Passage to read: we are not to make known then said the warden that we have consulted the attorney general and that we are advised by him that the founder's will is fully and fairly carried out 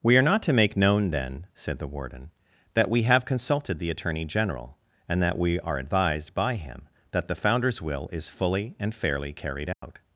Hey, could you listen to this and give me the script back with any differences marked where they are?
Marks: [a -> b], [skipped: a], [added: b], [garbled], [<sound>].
we are not to make known then said the warden that we have consulted the attorney general and that we are advised by him that the founder's will is fully and fairly carried out [dropout]